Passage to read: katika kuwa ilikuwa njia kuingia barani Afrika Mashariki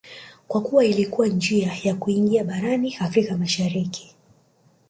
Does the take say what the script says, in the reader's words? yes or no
no